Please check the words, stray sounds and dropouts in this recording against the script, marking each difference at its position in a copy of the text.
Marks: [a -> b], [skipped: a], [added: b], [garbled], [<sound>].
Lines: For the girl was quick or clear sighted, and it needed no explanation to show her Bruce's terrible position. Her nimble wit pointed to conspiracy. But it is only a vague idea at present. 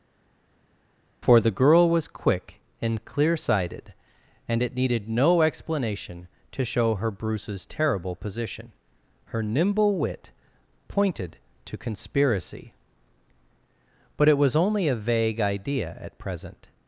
For the girl was quick [or -> and] clear sighted, and it needed no explanation to show her Bruce's terrible position. Her nimble wit pointed to conspiracy. But it [is -> was] only a vague idea at present.